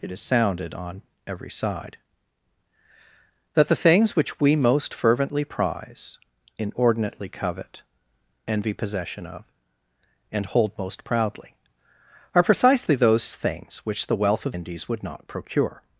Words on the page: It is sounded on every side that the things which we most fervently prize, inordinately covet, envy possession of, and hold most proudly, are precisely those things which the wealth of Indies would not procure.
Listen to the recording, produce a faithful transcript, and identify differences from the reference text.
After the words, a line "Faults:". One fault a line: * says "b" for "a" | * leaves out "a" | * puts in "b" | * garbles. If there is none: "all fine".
It is sounded on every side that the things which we most fervently prize, inordinately covet, envy possession of, and hold most proudly, are precisely those things which the wealth of Indies would not procure.
Faults:
all fine